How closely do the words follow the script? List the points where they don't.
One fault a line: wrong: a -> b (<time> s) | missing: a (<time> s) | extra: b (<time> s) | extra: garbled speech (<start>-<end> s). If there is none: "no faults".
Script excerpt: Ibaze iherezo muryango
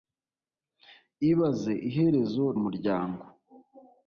no faults